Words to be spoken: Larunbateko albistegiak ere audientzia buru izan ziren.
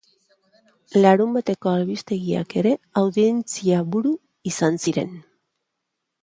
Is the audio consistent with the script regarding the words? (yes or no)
yes